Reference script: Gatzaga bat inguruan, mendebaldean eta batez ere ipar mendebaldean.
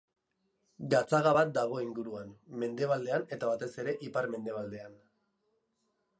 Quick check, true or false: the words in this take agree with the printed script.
false